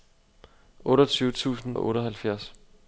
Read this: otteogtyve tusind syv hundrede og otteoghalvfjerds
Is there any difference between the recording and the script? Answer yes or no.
yes